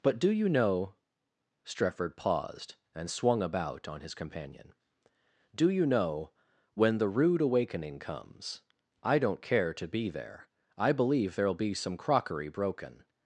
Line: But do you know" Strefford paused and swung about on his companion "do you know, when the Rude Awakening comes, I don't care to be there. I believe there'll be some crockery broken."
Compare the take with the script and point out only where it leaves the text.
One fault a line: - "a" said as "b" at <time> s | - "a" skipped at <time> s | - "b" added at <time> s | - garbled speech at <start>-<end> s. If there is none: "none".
none